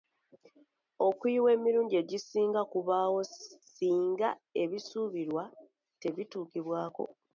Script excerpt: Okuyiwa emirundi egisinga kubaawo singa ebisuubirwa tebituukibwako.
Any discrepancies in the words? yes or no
no